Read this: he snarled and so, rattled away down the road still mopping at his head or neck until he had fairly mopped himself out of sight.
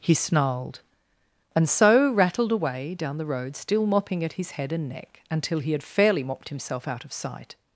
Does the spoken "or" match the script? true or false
false